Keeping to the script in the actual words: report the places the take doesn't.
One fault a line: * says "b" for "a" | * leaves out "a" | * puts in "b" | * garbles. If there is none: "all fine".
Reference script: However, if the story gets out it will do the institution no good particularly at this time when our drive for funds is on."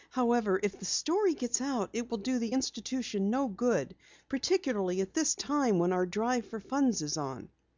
all fine